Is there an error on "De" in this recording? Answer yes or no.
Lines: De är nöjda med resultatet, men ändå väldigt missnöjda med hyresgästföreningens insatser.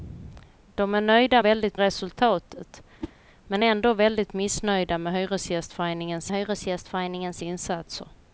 no